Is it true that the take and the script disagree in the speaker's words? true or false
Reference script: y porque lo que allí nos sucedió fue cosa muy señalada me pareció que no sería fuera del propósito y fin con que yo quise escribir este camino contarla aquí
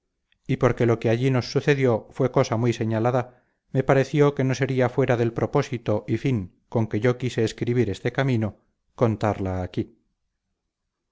false